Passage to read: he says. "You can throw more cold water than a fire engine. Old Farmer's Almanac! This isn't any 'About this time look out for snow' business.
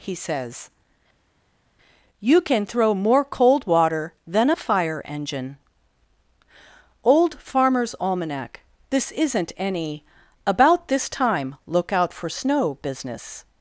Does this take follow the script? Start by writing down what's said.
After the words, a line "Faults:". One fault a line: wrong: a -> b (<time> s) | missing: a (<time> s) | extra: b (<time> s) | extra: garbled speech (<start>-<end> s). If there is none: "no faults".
he says. "You can throw more cold water than a fire engine. Old Farmer's Almanac! This isn't any 'About this time look out for snow' business.
Faults:
no faults